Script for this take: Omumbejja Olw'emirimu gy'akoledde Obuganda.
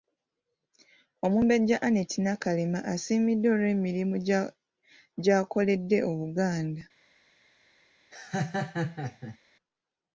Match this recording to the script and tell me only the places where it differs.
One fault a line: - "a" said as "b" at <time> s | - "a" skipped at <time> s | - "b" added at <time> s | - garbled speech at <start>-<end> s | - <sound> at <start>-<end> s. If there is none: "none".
- "Annette Nakalema asiimiddwa" added at 1.9 s
- laugh at 8.1-9.4 s